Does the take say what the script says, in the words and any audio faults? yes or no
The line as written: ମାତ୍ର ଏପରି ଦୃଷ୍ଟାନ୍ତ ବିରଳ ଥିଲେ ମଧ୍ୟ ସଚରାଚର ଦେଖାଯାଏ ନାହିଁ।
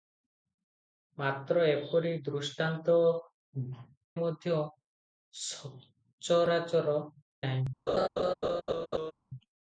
no